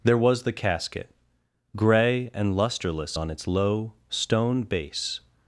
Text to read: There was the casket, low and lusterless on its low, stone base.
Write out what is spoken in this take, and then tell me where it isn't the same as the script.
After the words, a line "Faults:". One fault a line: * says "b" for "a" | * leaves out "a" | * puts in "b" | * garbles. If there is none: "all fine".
There was the casket, gray and lusterless on its low, stone base.
Faults:
* says "gray" for "low"